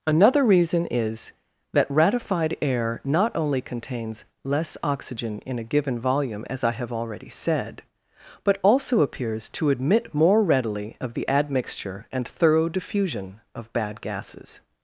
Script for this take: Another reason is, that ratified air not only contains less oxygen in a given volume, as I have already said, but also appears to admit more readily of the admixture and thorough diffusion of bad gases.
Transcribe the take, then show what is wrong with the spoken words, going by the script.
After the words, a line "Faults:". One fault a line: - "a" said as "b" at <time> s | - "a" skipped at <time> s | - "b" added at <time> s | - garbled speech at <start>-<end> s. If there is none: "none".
Another reason is, that ratified air not only contains less oxygen in a given volume, as I have already said, but also appears to admit more readily of the admixture and thorough diffusion of bad gases.
Faults:
none